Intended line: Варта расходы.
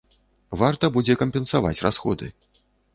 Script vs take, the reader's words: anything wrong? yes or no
yes